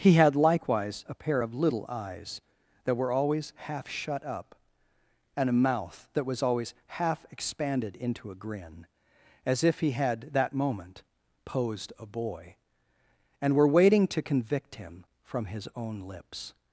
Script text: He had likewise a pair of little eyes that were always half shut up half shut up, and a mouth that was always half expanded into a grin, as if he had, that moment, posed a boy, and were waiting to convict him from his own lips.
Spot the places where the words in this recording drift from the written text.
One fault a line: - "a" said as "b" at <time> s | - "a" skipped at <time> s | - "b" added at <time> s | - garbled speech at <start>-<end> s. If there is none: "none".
- "half shut up" skipped at 4.5 s